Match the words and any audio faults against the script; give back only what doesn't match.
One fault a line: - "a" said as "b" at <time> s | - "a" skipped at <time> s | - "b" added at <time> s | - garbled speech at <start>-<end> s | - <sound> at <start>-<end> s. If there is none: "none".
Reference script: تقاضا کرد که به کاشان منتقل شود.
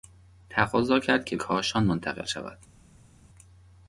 - "به" skipped at 1.4 s